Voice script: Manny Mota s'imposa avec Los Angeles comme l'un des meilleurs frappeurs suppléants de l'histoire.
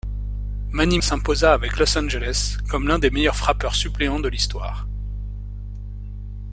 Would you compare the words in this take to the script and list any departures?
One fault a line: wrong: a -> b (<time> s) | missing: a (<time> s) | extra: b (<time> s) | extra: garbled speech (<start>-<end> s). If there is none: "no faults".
missing: Mota (1.0 s)